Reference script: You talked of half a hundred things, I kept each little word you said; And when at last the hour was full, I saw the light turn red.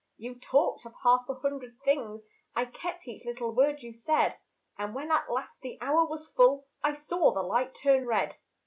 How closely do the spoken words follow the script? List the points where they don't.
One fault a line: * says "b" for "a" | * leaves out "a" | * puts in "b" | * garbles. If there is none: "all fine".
all fine